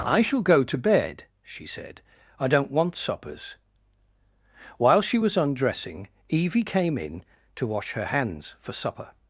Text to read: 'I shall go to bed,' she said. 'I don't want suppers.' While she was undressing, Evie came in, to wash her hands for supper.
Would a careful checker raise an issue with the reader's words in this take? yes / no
no